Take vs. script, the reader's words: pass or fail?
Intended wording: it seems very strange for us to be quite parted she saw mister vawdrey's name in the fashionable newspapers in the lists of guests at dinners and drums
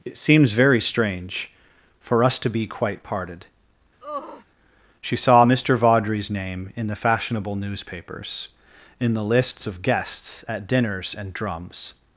pass